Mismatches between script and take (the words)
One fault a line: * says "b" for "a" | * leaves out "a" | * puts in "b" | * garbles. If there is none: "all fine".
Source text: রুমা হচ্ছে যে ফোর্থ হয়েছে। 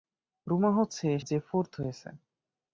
all fine